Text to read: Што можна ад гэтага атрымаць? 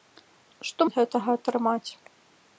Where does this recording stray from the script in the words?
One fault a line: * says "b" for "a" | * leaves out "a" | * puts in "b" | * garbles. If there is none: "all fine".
* leaves out "можна"